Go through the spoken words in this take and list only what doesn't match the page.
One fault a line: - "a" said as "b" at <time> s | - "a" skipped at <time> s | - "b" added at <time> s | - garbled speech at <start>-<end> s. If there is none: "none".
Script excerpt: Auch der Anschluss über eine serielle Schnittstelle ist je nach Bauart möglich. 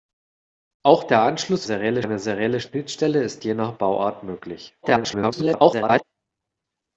- "über" said as "serielle" at 1.6 s
- garbled speech at 4.8-6.0 s